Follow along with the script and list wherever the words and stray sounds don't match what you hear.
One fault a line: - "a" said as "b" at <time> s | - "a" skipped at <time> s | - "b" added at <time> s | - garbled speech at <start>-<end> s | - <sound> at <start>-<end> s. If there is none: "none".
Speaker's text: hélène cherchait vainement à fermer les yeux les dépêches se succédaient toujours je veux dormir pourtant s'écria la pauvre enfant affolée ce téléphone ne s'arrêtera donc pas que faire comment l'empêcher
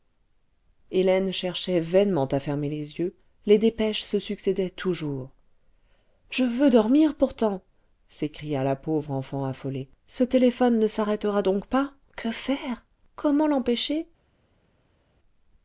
none